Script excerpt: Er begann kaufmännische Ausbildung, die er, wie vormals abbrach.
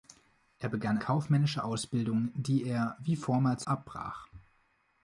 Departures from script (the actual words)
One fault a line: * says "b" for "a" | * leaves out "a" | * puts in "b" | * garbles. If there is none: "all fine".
all fine